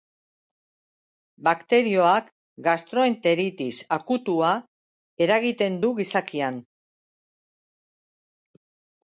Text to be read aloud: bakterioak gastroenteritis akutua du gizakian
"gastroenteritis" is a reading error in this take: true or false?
false